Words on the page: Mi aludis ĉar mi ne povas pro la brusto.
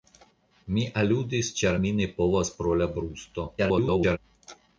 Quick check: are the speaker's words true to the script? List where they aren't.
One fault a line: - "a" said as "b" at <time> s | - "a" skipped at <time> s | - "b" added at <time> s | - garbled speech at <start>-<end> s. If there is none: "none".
- garbled speech at 3.6-4.2 s